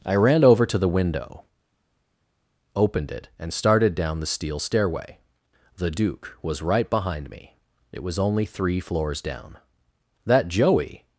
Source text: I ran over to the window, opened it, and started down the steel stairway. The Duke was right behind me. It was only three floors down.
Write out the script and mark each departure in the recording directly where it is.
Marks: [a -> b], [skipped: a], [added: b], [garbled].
I ran over to the window, opened it, and started down the steel stairway. The Duke was right behind me. It was only three floors down. [added: That Joey]